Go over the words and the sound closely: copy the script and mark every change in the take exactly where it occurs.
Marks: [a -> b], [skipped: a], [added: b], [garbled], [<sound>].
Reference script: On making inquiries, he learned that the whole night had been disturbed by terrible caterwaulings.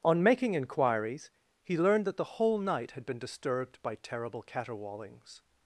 On making inquiries, he learned that the whole night had been disturbed by terrible caterwaulings.